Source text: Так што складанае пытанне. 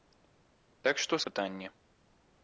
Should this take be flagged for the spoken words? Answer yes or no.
yes